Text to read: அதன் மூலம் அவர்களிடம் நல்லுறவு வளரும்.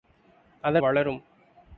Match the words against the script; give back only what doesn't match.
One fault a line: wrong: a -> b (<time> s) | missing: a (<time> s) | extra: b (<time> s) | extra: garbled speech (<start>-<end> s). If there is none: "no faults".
missing: மூலம் அவர்களிடம் நல்லுறவு (0.8 s)